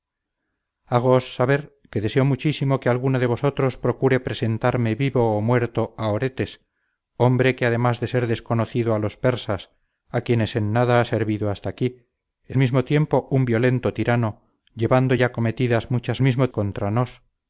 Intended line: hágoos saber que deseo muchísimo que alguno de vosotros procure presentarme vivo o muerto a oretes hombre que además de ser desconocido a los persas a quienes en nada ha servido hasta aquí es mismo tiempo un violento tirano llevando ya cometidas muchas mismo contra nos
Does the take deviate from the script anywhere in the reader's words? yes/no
no